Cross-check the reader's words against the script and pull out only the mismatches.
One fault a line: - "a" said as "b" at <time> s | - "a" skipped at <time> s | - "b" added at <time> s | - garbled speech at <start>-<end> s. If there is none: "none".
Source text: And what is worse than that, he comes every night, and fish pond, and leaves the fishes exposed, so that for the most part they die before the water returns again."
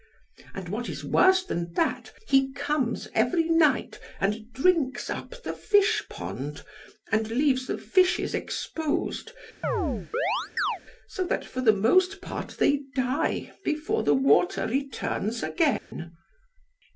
- "drinks up the" added at 4.5 s